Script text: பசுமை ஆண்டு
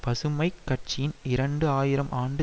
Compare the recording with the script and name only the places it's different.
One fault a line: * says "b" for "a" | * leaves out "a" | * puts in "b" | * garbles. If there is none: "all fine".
* puts in "கட்சியின் இரண்டு ஆயிரம்"